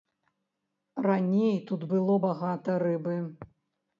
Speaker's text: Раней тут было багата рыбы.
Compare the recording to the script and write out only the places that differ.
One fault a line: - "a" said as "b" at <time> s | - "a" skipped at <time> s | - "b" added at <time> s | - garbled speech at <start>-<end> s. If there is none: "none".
none